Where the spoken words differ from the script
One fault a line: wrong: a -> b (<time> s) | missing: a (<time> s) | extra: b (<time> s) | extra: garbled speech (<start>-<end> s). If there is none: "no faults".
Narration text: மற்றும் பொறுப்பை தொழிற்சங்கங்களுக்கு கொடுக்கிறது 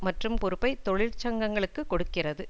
no faults